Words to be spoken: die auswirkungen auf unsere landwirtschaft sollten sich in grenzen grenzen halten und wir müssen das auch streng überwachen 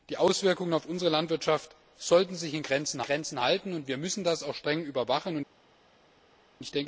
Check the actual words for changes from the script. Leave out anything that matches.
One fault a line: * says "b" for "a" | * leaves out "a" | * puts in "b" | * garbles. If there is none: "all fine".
all fine